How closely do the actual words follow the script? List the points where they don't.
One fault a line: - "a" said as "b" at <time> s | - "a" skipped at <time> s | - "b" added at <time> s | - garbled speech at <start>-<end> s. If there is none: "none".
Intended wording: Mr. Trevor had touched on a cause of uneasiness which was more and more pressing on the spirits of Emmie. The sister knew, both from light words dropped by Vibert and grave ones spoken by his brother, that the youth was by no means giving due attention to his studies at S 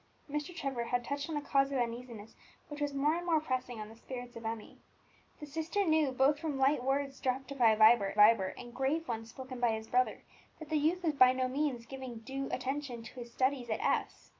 - "Vibert" added at 8.1 s